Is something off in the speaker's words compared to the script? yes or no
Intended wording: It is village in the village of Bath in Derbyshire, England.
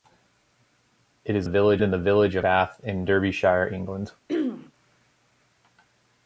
no